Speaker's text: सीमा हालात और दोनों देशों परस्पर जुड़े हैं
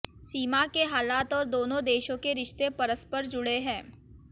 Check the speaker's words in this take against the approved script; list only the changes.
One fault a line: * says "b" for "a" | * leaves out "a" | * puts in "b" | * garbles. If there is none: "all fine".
* puts in "के"
* puts in "के रिश्ते"